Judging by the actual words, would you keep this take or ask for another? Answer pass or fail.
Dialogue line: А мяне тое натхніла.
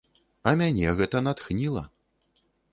fail